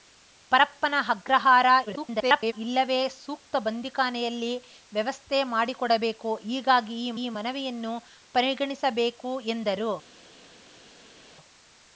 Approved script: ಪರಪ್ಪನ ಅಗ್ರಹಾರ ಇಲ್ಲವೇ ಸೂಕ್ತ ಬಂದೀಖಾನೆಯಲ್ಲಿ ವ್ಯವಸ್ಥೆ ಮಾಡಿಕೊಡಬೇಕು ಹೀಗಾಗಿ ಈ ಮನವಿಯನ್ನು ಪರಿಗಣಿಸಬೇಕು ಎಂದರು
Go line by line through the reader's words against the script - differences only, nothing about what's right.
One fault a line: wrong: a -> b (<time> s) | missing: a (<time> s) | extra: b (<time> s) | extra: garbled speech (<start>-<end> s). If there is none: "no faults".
extra: garbled speech (1.9-2.5 s)
extra: ಈ (7.2 s)